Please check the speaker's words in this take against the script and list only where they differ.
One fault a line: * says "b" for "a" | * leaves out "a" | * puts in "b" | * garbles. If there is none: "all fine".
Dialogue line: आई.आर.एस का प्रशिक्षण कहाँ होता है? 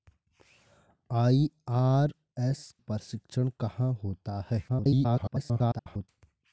* leaves out "का"
* garbles